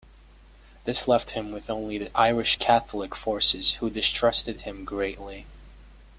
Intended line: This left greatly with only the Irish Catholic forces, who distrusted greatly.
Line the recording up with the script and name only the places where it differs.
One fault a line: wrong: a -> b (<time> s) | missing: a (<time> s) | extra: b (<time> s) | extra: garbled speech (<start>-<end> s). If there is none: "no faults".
wrong: greatly -> him (1.3 s)
extra: him (4.6 s)